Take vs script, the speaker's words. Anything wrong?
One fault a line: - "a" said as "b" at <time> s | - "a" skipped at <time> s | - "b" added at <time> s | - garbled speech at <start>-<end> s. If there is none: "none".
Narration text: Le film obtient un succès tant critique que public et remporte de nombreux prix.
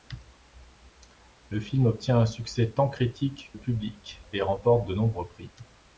- "que" skipped at 3.5 s